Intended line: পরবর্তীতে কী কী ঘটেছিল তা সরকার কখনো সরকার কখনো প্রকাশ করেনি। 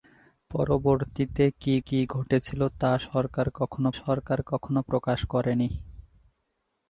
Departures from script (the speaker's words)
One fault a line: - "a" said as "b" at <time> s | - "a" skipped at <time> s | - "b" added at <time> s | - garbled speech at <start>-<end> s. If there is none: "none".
none